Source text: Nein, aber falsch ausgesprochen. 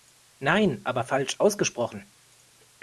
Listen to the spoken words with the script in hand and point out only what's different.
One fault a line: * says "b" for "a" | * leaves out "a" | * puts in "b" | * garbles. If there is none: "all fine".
all fine